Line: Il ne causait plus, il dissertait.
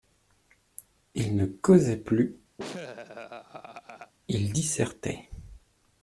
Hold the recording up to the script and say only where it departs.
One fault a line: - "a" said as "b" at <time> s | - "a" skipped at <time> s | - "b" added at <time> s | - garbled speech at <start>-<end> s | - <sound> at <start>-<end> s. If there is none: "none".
- laugh at 2.6-4.1 s